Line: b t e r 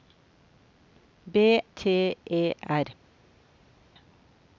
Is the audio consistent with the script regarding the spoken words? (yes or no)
yes